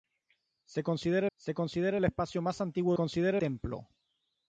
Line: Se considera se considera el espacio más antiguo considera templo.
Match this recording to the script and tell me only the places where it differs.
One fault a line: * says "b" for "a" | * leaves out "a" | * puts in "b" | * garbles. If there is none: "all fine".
all fine